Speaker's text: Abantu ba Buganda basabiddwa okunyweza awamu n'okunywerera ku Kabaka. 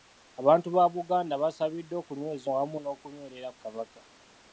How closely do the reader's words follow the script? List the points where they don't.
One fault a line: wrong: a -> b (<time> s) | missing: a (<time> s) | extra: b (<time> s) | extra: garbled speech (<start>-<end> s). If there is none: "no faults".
no faults